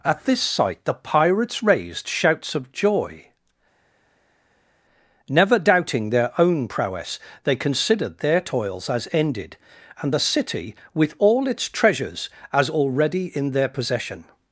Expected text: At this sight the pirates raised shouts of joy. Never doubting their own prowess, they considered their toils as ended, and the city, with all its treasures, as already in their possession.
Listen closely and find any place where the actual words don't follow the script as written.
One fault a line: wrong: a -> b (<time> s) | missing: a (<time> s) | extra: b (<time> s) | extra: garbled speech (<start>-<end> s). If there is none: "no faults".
no faults